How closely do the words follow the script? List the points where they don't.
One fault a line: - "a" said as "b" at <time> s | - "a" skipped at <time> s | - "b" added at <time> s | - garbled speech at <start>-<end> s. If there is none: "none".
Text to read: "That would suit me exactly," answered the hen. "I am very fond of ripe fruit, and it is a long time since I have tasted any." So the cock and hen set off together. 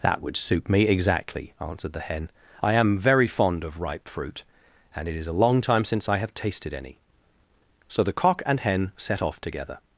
none